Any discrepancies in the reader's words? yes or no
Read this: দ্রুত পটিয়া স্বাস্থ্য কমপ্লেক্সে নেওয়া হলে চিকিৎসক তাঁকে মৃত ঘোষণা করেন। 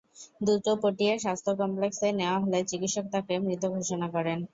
no